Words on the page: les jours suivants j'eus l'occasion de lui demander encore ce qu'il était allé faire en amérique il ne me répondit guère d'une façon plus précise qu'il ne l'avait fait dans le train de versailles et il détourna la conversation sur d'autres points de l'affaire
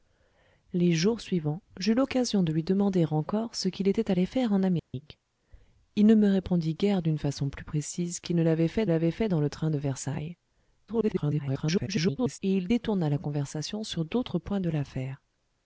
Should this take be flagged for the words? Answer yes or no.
yes